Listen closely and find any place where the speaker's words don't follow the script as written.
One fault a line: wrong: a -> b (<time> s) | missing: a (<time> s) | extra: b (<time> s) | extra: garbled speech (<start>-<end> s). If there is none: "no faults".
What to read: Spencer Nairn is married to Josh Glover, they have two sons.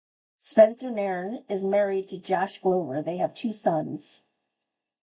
no faults